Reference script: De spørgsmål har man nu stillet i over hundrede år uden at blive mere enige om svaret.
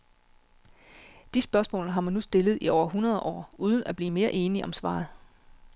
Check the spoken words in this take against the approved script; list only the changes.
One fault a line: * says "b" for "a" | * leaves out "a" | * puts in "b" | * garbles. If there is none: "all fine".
all fine